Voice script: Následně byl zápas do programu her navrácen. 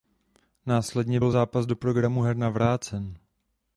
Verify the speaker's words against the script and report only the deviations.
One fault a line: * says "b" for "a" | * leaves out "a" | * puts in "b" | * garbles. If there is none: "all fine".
all fine